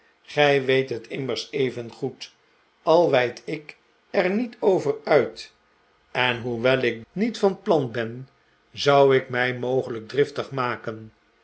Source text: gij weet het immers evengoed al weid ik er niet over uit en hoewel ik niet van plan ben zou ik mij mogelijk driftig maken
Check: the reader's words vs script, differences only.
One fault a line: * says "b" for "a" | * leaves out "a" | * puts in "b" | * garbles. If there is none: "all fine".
all fine